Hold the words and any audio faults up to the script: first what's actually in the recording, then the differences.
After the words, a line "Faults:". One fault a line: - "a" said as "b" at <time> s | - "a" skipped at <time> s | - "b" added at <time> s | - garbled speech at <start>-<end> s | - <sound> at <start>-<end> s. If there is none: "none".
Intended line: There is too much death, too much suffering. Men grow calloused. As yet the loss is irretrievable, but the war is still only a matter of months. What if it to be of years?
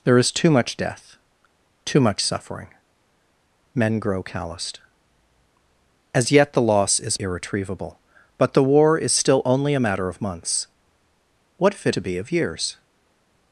There is too much death, too much suffering. Men grow calloused. As yet the loss is irretrievable, but the war is still only a matter of months. What if it to be of years?
Faults:
none